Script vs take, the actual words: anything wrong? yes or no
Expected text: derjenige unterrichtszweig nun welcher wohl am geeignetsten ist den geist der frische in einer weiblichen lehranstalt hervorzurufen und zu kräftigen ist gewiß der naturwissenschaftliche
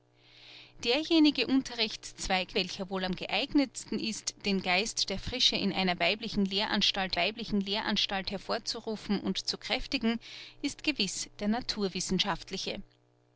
yes